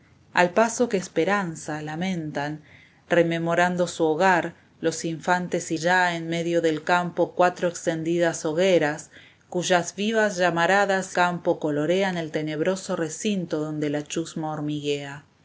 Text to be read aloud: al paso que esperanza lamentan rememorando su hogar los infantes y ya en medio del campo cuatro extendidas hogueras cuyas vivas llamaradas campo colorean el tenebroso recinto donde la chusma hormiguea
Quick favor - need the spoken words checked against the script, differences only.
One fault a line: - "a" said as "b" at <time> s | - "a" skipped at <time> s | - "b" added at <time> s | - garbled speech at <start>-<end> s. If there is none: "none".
none